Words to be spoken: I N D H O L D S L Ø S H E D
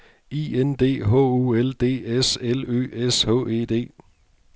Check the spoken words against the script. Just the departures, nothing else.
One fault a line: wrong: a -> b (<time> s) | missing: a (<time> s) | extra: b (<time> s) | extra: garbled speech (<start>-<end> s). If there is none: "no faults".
no faults